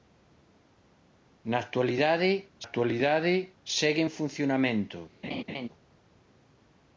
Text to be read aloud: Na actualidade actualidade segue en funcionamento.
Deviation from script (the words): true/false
false